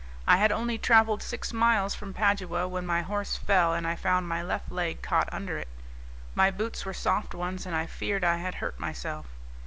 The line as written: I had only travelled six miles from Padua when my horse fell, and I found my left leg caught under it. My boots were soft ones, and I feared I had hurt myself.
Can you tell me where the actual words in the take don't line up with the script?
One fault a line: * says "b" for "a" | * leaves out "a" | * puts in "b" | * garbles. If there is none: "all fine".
all fine